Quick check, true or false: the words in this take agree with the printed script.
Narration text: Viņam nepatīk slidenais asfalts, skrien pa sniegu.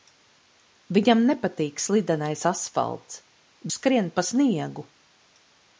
true